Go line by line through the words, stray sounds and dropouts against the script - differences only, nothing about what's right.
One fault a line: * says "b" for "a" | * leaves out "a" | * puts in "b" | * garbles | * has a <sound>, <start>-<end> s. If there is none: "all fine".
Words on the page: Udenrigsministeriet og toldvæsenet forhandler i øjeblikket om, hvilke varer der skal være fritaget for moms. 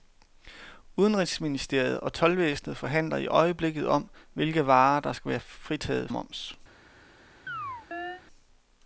* leaves out "for"
* has a chirp, 7.5-8.2 s